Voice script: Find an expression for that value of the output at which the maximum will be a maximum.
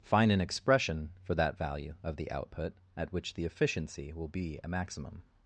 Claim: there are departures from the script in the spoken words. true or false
true